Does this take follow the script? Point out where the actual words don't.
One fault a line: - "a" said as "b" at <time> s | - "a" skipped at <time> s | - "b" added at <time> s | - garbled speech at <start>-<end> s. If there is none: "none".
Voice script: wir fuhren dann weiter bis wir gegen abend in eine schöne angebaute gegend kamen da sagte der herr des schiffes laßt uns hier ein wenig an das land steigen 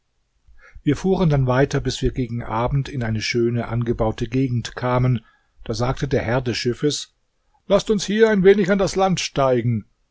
none